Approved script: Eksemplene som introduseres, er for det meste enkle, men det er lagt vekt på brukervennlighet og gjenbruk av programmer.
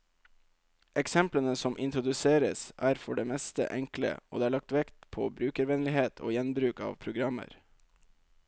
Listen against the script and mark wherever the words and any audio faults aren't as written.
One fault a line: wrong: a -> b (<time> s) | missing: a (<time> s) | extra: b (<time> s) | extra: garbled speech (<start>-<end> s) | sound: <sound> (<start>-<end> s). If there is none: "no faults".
wrong: men -> og (4.3 s)